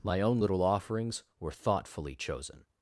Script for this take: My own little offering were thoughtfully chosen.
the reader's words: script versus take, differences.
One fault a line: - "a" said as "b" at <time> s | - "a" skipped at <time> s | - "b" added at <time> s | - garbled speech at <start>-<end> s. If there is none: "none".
- "offering" said as "offerings" at 0.6 s